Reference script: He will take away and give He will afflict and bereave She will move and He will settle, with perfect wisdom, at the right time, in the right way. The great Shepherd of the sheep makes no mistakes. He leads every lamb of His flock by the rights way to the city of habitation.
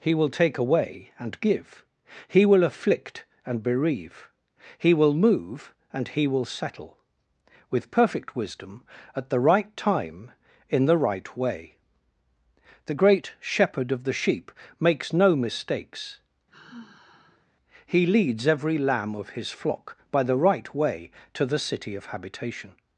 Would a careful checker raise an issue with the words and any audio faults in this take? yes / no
yes